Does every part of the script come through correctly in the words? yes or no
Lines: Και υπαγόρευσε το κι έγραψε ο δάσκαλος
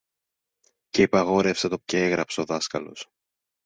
yes